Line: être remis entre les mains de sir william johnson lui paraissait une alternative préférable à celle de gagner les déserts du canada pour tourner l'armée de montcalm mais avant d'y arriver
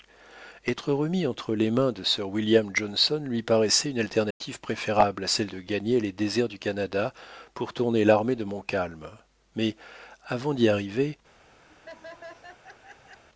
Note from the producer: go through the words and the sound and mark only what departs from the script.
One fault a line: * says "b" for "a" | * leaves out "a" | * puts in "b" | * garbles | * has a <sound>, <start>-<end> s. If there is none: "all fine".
* has a dropout, 4.3-4.4 s
* has a laugh, 11.7-13.2 s